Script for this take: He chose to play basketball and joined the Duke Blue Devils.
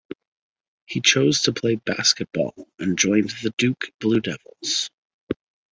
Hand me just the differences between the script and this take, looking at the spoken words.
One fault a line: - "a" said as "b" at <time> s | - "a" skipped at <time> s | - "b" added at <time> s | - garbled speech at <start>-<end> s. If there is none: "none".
none